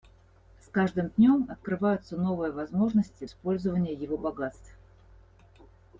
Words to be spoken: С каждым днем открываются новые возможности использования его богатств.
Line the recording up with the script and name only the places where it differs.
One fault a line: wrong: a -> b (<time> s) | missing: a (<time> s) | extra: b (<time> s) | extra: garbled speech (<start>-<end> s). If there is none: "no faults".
no faults